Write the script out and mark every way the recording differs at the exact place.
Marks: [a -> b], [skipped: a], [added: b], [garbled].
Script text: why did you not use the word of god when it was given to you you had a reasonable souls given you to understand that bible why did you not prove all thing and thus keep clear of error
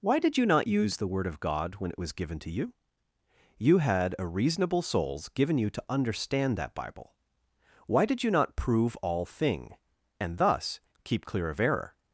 why did you not use the word of god when it was given to you you had a reasonable souls given you to understand that bible why did you not prove all thing and thus keep clear of error